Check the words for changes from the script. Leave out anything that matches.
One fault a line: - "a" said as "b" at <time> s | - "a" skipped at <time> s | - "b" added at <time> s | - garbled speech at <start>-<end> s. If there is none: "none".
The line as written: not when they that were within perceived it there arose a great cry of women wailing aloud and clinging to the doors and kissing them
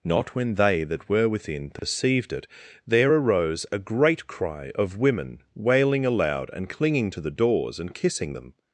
none